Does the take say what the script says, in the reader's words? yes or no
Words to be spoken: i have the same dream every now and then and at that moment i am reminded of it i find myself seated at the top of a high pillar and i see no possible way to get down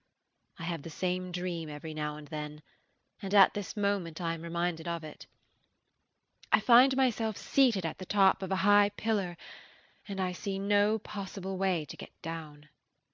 no